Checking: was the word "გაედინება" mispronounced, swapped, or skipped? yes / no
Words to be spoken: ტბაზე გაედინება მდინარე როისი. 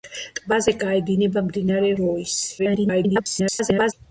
no